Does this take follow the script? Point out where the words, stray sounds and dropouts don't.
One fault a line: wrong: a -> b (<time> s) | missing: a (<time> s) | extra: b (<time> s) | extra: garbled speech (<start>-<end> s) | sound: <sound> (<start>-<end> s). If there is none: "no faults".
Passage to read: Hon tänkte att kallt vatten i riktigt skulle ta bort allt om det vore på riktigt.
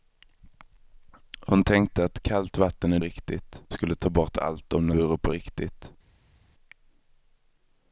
no faults